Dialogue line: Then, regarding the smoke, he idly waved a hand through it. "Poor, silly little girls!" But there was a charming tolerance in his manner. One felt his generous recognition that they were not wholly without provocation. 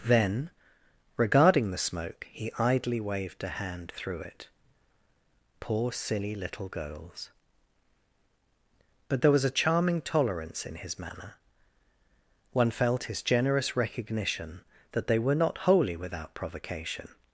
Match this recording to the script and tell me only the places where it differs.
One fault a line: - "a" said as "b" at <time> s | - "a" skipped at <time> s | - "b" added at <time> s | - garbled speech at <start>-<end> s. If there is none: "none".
none